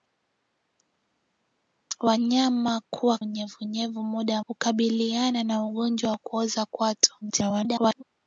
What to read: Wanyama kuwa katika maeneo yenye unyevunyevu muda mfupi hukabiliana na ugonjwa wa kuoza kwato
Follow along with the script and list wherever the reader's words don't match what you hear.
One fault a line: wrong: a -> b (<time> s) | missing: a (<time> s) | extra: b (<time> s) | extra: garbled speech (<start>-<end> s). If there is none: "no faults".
missing: katika maeneo yenye (3.2 s)
missing: mfupi (4.4 s)
extra: garbled speech (7.2-8.0 s)